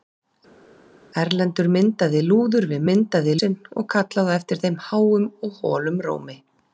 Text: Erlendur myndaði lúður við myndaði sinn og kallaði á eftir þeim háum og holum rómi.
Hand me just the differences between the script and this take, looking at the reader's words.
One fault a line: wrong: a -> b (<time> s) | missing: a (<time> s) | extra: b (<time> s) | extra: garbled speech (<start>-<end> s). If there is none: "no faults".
no faults